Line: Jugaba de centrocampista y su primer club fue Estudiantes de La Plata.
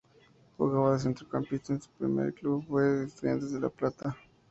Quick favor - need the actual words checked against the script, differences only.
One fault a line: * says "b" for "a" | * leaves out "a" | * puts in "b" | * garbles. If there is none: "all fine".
all fine